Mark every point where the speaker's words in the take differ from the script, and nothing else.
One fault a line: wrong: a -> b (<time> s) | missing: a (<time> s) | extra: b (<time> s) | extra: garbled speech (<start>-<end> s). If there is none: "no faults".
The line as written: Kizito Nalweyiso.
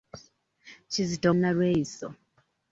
no faults